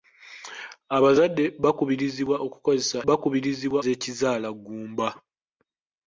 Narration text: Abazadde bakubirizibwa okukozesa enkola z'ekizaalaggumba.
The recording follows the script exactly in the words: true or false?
false